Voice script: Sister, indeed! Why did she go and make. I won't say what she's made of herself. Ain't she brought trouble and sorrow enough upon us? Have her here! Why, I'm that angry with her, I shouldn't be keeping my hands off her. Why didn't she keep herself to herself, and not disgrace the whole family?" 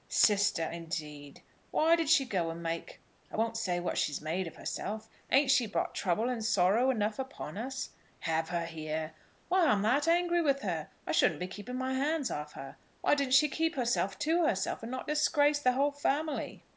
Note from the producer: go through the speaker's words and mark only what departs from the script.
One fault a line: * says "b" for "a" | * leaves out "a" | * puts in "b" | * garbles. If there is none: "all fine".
all fine